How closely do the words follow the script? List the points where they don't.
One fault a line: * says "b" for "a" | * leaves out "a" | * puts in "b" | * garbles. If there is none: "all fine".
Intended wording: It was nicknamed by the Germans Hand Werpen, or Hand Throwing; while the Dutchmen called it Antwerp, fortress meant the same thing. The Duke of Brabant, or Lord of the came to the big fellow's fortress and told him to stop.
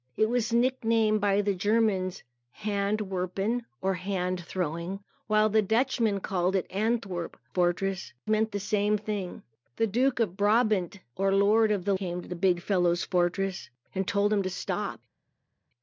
all fine